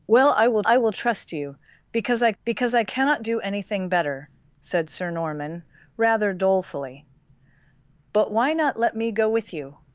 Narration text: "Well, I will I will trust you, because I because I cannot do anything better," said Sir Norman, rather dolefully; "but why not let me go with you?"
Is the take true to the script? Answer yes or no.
yes